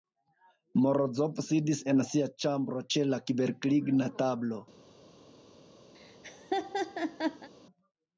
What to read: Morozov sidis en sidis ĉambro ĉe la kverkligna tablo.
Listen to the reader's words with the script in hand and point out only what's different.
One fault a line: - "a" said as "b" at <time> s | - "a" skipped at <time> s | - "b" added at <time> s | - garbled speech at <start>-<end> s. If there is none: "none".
- "sidis" said as "sia" at 2.1 s